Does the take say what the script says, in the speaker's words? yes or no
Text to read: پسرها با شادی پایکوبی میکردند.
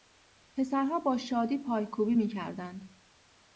yes